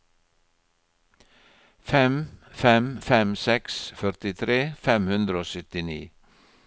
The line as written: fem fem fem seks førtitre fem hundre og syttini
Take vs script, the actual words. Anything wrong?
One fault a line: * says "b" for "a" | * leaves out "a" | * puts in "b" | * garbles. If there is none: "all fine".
all fine